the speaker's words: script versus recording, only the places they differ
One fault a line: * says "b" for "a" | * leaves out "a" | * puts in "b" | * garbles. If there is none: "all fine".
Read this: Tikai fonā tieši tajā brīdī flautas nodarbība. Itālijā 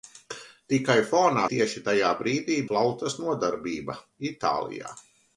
all fine